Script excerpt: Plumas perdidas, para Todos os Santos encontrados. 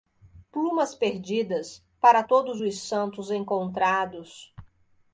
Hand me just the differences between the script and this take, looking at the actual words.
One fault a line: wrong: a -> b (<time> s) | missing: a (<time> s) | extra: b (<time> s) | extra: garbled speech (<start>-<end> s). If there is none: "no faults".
no faults